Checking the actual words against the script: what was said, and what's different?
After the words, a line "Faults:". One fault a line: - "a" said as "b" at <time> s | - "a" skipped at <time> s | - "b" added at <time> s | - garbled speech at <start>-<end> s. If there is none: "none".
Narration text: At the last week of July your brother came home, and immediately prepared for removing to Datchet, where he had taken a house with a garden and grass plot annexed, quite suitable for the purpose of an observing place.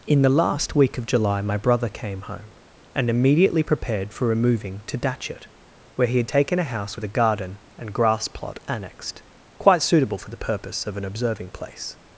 In the last week of July my brother came home, and immediately prepared for removing to Datchet, where he had taken a house with a garden and grass plot annexed, quite suitable for the purpose of an observing place.
Faults:
- "At" said as "In" at 0.1 s
- "your" said as "my" at 1.4 s